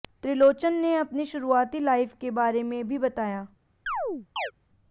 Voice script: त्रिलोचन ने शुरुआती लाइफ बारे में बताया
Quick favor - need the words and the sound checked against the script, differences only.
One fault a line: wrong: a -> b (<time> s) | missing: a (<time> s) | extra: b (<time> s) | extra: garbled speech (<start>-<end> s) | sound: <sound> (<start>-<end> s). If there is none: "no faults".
extra: अपनी (0.9 s)
extra: के (2.2 s)
extra: भी (2.9 s)
sound: chirp (3.9-4.5 s)